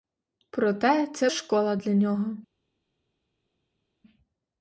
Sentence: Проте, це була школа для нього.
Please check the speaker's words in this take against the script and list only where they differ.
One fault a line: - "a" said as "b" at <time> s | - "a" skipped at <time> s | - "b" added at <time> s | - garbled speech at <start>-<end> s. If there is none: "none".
- "була" skipped at 1.3 s